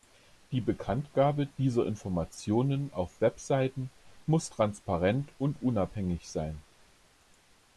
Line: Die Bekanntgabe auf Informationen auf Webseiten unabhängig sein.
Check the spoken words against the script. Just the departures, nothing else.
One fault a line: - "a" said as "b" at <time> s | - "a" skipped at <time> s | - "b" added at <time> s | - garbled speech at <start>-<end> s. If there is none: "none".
- "auf" said as "dieser" at 1.6 s
- "muss transparent und" added at 4.3 s